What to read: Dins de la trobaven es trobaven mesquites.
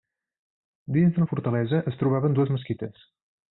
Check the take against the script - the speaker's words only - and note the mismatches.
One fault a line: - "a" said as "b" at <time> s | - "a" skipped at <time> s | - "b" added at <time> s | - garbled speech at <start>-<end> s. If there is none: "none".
- "trobaven" said as "fortalesa" at 1.3 s
- "dues" added at 2.4 s